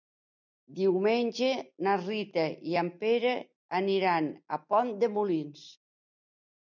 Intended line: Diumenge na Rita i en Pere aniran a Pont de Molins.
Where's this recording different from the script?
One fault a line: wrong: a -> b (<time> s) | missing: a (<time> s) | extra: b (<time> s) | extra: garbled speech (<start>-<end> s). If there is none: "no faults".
no faults